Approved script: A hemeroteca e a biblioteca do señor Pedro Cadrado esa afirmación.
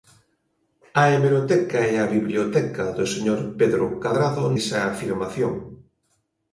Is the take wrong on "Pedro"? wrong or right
right